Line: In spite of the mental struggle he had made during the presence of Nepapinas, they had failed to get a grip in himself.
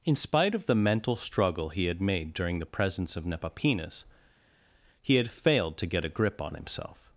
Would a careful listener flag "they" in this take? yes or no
yes